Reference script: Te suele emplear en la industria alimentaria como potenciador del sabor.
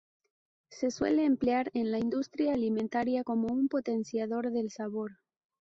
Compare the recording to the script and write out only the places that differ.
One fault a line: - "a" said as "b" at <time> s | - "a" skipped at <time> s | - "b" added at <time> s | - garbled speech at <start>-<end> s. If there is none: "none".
- "Te" said as "Se" at 0.7 s
- "un" added at 3.5 s